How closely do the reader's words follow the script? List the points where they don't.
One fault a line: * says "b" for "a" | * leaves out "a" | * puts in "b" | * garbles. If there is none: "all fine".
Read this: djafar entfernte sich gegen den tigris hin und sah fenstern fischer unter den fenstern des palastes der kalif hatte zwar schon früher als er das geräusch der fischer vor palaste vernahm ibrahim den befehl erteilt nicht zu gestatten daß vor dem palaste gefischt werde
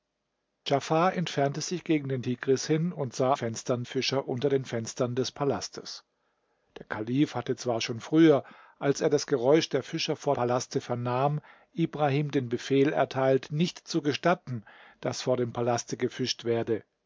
all fine